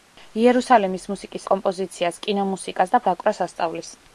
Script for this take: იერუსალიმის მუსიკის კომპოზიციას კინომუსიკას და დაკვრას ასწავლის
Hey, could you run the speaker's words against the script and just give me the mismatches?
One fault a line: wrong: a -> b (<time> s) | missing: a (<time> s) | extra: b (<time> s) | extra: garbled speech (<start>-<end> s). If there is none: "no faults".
no faults